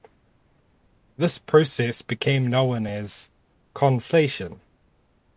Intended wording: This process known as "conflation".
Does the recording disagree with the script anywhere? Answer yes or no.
yes